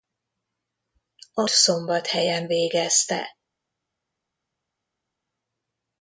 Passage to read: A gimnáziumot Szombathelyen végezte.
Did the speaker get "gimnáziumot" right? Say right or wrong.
wrong